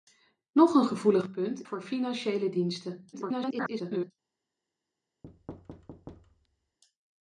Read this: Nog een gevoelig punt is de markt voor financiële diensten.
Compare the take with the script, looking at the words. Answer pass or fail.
fail